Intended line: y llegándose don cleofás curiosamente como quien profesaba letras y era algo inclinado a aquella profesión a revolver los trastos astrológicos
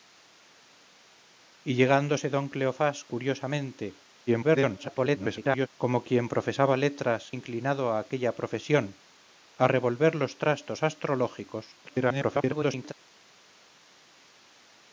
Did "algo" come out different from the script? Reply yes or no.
yes